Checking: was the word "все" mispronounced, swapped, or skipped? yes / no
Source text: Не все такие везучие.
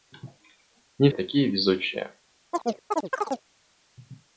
yes